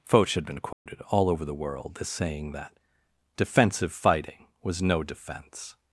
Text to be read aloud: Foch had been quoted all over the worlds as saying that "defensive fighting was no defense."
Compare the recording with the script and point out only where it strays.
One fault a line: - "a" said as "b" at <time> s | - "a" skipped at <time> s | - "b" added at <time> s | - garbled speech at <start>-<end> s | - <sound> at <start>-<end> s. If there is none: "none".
- dropout at 0.7-0.9 s
- "worlds" said as "world" at 1.6 s